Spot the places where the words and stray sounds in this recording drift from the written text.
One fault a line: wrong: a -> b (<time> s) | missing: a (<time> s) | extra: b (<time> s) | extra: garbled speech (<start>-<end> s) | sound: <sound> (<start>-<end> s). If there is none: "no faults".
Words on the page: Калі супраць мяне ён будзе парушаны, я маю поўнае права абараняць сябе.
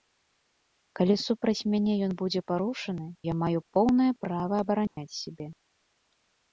sound: dropout (4.9-5.0 s)